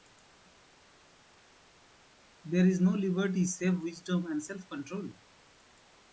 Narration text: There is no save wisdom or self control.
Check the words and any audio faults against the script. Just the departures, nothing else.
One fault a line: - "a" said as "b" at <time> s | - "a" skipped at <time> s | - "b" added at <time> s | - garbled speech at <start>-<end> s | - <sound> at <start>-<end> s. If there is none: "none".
- "liberty" added at 2.9 s
- "or" said as "and" at 4.2 s